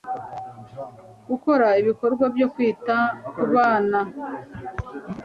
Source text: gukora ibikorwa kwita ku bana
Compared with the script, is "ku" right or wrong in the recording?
right